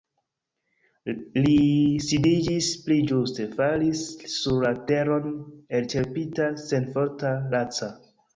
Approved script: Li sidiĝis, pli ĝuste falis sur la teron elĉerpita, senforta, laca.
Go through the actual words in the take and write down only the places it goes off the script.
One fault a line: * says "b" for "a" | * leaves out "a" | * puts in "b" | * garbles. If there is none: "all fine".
all fine